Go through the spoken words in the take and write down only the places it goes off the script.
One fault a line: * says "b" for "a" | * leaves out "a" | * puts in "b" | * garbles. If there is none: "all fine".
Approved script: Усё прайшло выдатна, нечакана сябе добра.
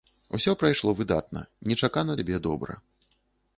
all fine